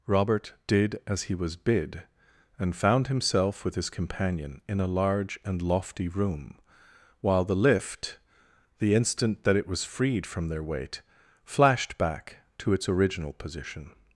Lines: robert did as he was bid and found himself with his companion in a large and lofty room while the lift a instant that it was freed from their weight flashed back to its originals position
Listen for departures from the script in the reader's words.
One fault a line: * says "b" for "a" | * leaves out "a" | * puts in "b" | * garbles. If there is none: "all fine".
* says "the" for "a"
* says "original" for "originals"